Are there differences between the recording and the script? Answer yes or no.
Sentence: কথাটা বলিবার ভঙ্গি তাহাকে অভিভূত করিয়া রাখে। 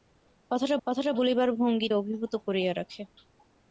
yes